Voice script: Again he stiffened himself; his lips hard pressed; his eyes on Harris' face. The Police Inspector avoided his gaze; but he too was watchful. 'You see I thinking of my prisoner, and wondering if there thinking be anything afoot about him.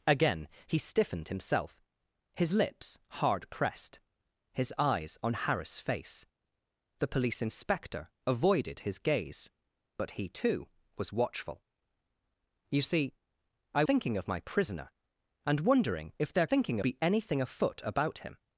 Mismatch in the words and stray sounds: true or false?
false